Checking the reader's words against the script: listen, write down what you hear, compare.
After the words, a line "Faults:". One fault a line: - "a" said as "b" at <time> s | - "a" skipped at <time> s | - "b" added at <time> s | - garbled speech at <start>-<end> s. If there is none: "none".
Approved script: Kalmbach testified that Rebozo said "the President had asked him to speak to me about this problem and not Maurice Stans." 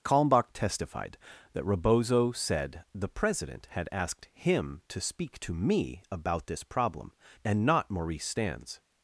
Kalmbach testified that Rebozo said "the President had asked him to speak to me about this problem and not Maurice Stans."
Faults:
none